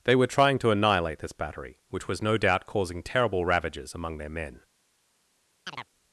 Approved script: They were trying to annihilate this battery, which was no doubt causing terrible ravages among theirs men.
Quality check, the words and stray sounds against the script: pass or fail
fail